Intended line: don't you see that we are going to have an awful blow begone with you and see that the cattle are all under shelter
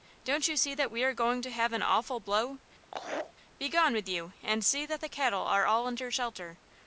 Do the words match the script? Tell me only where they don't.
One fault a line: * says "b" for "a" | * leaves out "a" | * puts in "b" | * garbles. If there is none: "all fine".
all fine